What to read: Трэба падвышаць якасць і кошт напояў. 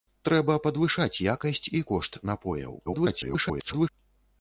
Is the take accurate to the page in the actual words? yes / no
no